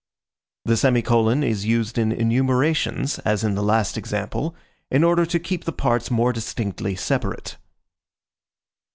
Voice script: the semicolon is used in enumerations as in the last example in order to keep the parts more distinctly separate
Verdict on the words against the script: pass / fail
pass